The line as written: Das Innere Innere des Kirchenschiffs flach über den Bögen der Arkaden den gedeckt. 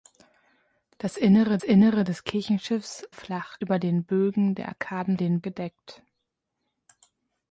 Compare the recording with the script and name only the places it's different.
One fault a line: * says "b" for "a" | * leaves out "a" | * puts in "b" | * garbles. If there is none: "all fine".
all fine